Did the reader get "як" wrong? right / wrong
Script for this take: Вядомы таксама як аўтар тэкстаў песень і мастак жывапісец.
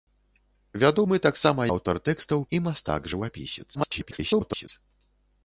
wrong